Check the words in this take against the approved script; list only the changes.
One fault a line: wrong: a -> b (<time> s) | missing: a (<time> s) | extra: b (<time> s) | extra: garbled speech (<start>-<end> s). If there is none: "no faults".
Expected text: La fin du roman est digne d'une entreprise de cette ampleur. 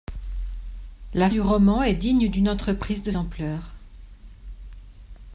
missing: fin (1.3 s)
missing: cette (3.1 s)